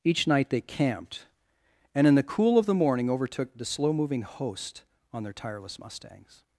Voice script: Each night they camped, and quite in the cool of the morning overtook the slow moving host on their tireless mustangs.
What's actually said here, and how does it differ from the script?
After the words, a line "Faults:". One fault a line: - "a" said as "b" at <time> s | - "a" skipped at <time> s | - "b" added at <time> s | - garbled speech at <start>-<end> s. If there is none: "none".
Each night they camped, and in the cool of the morning overtook the slow moving host on their tireless mustangs.
Faults:
- "quite" skipped at 2.1 s